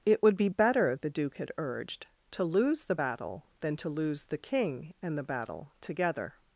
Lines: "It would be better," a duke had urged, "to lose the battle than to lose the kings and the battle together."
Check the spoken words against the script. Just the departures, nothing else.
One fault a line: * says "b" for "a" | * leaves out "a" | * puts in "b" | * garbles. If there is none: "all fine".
* says "the" for "a"
* says "king" for "kings"